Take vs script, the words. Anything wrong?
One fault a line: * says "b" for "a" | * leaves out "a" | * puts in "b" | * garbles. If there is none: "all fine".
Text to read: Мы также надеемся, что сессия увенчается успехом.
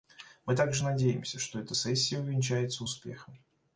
* puts in "эта"